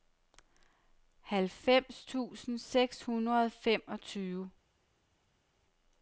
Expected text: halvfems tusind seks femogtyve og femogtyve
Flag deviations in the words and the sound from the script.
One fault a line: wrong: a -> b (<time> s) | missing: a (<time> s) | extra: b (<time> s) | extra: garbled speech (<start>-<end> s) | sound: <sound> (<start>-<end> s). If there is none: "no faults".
wrong: femogtyve -> hundrede (3.0 s)